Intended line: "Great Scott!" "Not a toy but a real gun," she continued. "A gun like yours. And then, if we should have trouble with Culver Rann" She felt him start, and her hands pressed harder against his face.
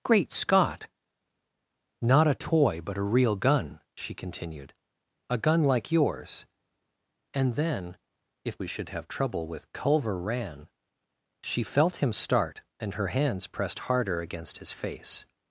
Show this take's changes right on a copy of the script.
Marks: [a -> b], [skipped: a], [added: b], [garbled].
"Great Scott!" "Not a toy but a real gun," she continued. "A gun like yours. And then, if we should have trouble with Culver Rann" She felt him start, and her hands pressed harder against his face.